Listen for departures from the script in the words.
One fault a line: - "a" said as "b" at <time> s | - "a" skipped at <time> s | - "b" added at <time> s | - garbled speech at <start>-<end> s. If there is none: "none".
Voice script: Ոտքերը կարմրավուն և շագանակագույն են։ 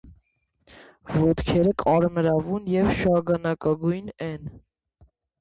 none